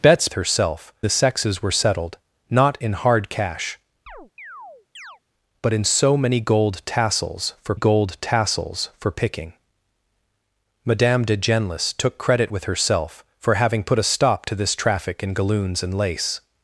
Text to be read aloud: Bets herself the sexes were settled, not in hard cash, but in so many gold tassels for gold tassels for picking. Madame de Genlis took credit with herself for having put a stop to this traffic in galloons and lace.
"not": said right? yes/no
yes